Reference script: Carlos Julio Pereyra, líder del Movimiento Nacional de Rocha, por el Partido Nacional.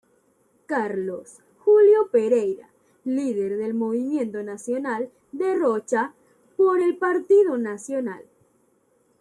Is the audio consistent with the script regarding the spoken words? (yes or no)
yes